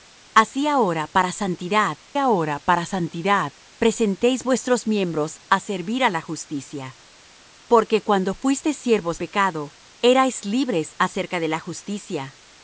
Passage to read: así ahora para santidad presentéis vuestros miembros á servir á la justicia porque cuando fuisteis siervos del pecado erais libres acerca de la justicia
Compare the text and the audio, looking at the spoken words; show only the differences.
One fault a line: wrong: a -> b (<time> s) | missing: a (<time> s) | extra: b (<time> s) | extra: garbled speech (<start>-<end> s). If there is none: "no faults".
extra: ahora para santidad (2.2 s)
missing: del (9.2 s)